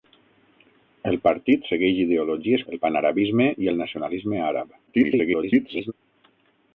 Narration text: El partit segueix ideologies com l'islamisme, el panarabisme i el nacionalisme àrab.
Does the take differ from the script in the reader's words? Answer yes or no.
yes